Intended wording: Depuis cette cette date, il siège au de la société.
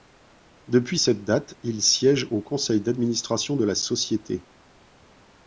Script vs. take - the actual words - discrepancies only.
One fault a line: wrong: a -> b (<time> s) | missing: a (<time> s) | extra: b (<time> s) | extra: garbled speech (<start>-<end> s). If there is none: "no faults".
missing: cette (1.2 s)
extra: conseil d'administration (2.4 s)